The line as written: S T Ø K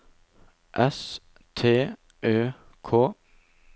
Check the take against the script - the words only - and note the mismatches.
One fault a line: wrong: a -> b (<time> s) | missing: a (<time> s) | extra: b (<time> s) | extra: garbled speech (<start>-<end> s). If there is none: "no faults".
no faults